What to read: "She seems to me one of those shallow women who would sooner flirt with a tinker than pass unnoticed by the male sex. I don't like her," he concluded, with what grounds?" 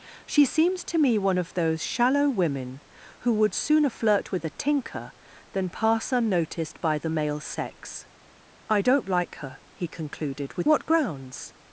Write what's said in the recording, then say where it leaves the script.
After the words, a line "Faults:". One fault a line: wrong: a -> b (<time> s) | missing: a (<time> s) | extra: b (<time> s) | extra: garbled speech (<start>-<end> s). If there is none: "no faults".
"She seems to me one of those shallow women who would sooner flirt with a tinker than pass unnoticed by the male sex. I don't like her," he concluded, with what grounds?"
Faults:
no faults